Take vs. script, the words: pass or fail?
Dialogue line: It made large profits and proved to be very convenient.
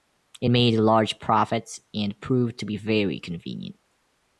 pass